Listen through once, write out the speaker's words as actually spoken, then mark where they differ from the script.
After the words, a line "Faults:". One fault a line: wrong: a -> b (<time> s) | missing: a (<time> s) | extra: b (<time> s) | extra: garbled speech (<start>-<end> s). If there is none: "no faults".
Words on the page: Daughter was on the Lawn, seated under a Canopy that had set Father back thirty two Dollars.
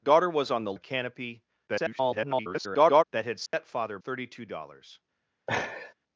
Daughter was on the A Canopy [garbled] that had set Father thirty two Dollars.
Faults:
missing: Lawn seated under (0.7 s)
extra: garbled speech (1.7-3.0 s)
missing: back (4.0 s)